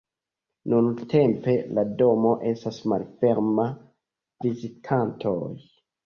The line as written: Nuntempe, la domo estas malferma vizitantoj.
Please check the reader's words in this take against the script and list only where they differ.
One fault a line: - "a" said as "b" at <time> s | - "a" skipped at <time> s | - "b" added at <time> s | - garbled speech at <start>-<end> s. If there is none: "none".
none